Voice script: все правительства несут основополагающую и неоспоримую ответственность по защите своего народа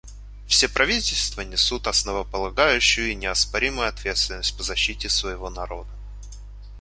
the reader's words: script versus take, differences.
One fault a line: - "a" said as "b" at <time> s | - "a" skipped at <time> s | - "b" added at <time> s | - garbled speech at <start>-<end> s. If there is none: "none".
none